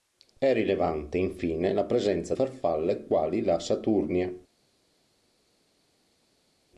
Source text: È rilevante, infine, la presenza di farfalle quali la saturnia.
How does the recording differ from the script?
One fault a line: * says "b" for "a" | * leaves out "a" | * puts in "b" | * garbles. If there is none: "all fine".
* leaves out "di"